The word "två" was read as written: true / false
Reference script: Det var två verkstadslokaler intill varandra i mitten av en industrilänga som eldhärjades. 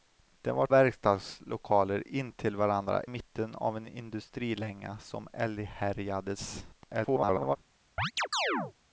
false